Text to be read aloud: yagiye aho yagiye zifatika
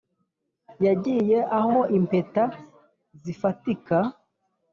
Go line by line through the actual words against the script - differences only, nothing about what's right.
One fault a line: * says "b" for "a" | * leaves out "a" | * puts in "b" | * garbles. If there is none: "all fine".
* says "impeta" for "yagiye"